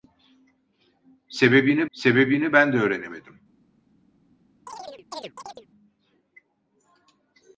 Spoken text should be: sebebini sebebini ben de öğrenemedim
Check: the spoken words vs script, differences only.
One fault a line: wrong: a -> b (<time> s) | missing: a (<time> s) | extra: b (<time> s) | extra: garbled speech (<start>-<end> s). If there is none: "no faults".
no faults